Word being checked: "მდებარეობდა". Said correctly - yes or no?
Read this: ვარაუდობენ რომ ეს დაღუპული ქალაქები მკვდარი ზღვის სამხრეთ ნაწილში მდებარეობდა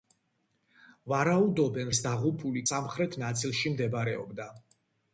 yes